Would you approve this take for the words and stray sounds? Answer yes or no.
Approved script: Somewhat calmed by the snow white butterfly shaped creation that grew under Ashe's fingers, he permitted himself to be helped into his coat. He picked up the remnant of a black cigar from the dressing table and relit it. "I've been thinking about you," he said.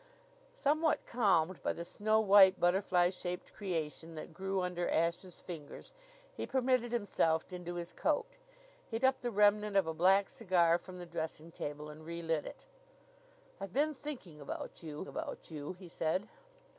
no